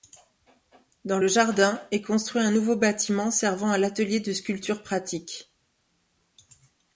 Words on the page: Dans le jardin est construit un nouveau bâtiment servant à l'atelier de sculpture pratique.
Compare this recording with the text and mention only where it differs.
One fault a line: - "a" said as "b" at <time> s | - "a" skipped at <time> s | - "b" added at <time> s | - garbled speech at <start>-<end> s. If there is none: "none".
none